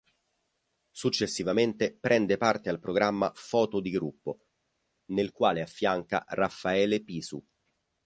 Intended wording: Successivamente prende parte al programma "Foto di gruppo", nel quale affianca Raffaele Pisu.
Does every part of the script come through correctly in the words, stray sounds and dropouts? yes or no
yes